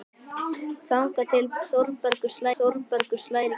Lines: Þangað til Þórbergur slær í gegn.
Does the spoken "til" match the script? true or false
true